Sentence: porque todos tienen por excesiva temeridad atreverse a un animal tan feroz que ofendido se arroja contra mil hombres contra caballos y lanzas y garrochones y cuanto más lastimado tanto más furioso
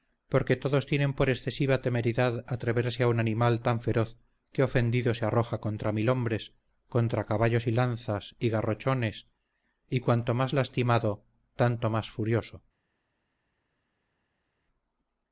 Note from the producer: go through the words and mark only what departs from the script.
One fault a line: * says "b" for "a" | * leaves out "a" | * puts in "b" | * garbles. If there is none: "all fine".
all fine